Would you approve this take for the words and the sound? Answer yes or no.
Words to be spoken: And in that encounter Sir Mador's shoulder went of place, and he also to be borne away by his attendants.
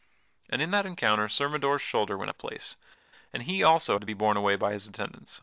yes